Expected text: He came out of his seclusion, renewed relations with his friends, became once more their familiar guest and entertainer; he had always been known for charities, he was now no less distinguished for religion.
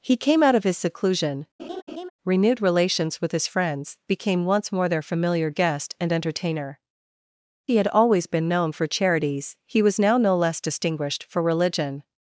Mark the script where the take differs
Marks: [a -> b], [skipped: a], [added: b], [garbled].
He came out of his seclusion, renewed relations with his friends, became once more their familiar guest and entertainer; he had always been known for charities, he was now no less distinguished for religion.